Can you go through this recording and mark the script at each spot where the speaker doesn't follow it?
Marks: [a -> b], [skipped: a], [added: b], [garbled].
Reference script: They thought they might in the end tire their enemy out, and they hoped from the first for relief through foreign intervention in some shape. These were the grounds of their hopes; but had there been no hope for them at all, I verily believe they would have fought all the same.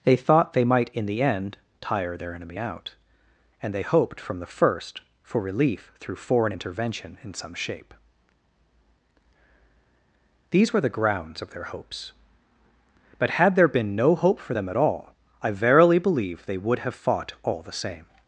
They thought they might in the end tire their enemy out, and they hoped from the first for relief through foreign intervention in some shape. These were the grounds of their hopes; but had there been no hope for them at all, I verily believe they would have fought all the same.